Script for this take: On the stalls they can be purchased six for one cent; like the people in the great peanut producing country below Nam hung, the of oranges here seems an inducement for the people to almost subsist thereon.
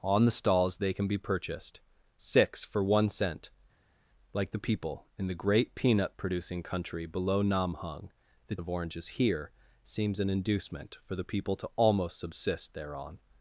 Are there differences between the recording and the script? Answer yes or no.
no